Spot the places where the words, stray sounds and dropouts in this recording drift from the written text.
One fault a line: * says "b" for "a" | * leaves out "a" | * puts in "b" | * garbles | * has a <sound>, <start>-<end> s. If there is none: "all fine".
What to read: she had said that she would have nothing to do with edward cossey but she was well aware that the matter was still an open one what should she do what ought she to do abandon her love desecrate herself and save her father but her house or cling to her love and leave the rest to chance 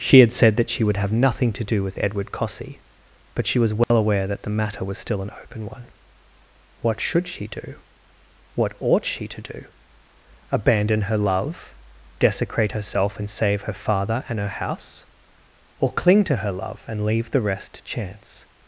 * has a dropout, 3.8-3.9 s
* says "and" for "but"